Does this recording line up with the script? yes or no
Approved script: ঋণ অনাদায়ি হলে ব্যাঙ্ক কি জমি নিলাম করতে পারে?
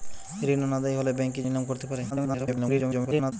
no